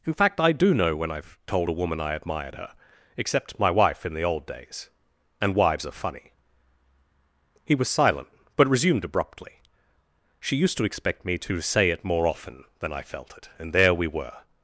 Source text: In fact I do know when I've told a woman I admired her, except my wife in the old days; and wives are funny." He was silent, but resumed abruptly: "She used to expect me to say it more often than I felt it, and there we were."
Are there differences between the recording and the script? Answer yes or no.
no